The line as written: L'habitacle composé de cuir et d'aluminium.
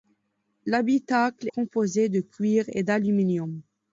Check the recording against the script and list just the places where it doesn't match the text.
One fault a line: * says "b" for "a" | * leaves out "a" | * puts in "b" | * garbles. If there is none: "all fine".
all fine